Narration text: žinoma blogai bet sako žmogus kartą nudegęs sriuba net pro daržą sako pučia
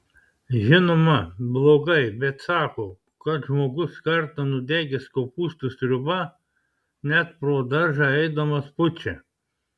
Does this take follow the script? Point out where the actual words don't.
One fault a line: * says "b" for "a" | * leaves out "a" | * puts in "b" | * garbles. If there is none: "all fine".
* puts in "kad"
* puts in "kopūstų"
* says "eidamas" for "sako"